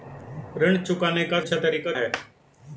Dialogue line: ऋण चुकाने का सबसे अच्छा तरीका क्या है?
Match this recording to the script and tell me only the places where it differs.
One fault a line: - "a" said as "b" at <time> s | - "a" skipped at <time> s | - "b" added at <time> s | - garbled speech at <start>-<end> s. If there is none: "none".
- "सबसे" skipped at 1.4 s
- "क्या" skipped at 1.9 s